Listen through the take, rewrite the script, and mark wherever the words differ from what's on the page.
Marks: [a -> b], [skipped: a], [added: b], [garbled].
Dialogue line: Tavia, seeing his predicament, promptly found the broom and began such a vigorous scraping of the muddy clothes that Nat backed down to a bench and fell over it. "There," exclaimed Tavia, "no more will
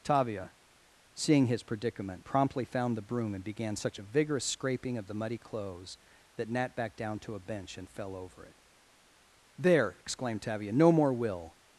Tavia, seeing his predicament, promptly found the broom and began such a vigorous scraping of the muddy clothes that Nat backed down to a bench and fell over it. "There," exclaimed Tavia, "no more will